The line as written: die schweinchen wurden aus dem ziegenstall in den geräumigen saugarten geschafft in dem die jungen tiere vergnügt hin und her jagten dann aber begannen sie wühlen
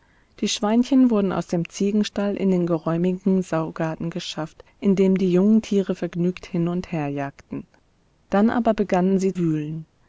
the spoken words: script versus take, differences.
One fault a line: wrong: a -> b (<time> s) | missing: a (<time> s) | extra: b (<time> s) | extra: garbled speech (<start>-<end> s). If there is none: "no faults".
no faults